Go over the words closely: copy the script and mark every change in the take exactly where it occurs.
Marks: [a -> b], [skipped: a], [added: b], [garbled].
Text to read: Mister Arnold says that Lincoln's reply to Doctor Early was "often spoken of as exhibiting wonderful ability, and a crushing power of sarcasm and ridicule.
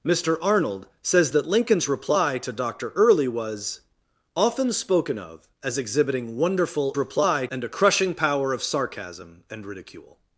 Mister Arnold says that Lincoln's reply to Doctor Early was "often spoken of as exhibiting wonderful [ability, -> reply] and a crushing power of sarcasm and ridicule.